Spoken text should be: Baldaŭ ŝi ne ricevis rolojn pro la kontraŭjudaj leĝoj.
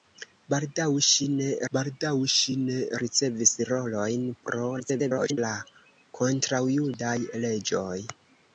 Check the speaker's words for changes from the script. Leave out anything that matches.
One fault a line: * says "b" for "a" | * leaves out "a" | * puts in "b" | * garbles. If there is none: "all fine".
* puts in "baldaŭ ŝi ne"
* garbles